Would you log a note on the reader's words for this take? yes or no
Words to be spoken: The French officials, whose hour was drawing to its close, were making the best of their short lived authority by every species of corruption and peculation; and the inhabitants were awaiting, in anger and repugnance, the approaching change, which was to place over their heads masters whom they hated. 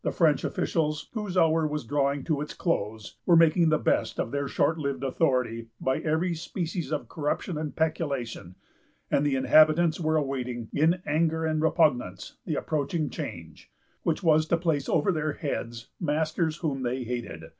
no